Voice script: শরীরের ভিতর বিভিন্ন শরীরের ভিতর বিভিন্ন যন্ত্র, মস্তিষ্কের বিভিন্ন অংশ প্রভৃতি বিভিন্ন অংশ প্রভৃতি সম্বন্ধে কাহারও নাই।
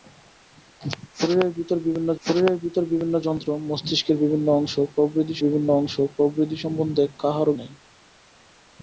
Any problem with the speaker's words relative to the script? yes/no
no